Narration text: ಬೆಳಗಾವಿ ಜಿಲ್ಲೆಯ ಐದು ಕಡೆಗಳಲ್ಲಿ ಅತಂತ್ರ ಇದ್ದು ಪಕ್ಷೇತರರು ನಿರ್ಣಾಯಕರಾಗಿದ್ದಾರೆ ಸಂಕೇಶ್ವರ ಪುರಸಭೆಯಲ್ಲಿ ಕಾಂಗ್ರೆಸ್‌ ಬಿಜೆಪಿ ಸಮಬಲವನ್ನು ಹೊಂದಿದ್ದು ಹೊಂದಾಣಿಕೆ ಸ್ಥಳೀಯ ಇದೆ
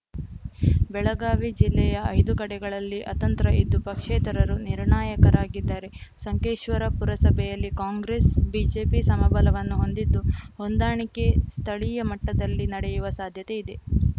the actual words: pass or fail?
fail